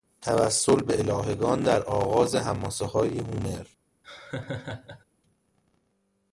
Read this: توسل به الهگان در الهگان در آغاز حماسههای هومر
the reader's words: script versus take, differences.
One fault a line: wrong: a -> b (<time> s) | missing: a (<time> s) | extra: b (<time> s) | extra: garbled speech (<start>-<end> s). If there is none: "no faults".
missing: الهگان در (1.8 s)